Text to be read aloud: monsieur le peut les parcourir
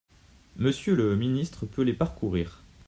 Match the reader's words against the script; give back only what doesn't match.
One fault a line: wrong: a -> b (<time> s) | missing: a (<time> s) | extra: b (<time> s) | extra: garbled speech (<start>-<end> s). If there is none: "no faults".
extra: ministre (1.2 s)